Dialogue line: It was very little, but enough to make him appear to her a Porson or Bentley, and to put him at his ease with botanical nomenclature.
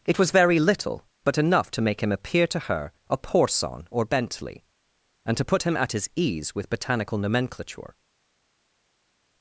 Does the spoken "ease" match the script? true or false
true